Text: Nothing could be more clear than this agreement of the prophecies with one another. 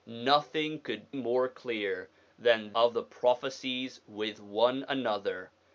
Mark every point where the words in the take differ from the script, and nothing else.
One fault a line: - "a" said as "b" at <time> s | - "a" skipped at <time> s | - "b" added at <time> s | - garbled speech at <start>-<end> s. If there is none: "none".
- "be" skipped at 1.1 s
- "this agreement" skipped at 2.7 s